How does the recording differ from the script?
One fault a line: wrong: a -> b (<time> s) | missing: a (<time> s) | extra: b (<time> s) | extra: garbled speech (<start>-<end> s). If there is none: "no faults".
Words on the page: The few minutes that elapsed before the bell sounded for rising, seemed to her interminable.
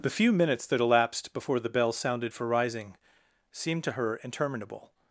no faults